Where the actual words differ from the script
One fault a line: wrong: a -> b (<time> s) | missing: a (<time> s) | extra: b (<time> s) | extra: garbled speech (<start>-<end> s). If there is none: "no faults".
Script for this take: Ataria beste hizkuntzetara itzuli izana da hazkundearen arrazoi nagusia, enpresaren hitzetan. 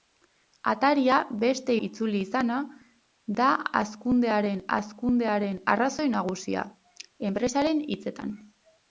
missing: hizkuntzetara (1.7 s)
extra: hazkundearen (4.8 s)